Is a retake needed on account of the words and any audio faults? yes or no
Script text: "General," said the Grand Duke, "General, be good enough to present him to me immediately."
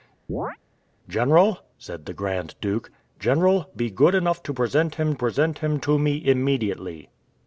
yes